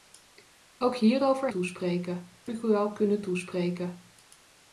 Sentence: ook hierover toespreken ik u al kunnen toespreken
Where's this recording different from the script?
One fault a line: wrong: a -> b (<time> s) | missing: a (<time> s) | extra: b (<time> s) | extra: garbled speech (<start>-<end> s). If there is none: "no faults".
no faults